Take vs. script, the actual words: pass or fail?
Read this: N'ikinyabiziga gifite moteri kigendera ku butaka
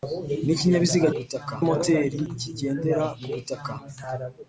fail